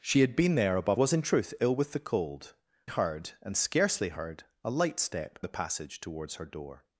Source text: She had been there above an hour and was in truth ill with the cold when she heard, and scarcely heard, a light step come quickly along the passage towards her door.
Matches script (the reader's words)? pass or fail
fail